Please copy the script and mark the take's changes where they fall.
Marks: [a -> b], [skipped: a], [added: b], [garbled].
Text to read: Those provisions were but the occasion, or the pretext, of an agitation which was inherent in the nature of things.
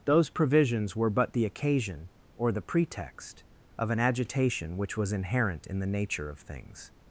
Those provisions were but the occasion, or the pretext, of an agitation which was inherent in the nature of things.